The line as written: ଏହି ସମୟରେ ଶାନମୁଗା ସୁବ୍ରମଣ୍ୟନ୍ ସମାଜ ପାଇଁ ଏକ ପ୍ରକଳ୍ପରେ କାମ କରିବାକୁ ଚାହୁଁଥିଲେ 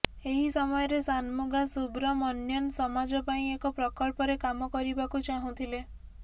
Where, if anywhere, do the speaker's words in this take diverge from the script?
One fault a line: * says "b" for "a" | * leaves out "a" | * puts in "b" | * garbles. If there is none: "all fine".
all fine